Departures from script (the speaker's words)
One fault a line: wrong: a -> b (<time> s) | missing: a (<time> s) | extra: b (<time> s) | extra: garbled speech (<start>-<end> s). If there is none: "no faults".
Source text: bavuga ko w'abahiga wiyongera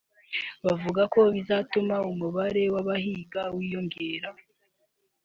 extra: bizatuma umubare (1.3 s)